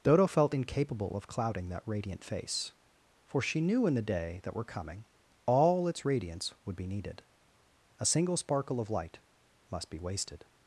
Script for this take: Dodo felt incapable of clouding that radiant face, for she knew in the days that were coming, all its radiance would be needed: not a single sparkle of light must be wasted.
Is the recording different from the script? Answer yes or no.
yes